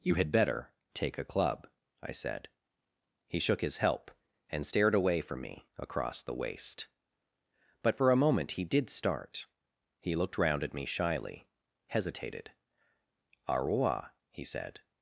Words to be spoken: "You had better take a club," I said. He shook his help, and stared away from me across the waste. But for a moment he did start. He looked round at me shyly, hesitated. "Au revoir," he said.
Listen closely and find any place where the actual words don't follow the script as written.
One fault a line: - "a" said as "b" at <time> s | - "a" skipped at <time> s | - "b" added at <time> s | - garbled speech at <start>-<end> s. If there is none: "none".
none